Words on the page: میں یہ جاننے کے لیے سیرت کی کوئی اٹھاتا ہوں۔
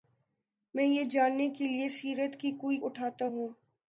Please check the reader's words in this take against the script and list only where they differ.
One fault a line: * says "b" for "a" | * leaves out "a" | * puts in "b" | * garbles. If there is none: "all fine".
all fine